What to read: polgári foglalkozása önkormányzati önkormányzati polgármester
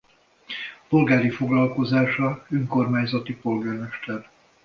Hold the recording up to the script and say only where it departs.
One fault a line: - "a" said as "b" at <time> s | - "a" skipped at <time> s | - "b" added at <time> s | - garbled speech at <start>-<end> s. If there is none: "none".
- "önkormányzati" skipped at 3.4 s